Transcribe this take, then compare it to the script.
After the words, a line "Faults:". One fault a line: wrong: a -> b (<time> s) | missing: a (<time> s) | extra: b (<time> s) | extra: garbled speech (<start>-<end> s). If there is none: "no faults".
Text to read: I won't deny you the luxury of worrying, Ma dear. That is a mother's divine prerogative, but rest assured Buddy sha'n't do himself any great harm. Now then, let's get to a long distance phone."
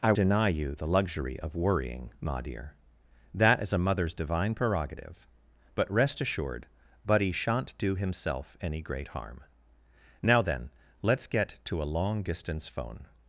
I deny you the luxury of worrying, Ma dear. That is a mother's divine prerogative, but rest assured Buddy sha'n't do himself any great harm. Now then, let's get to a long distance phone."
Faults:
missing: won't (0.1 s)